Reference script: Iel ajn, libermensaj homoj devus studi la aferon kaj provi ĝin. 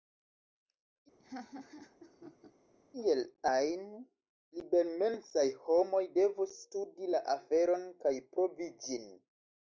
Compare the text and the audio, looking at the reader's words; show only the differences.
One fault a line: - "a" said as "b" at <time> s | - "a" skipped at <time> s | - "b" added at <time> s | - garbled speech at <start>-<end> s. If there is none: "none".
none